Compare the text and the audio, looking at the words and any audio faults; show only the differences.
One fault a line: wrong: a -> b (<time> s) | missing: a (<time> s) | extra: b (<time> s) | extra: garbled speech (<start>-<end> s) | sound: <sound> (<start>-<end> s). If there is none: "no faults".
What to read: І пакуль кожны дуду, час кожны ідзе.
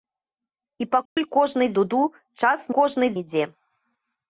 sound: dropout (1.1-1.2 s)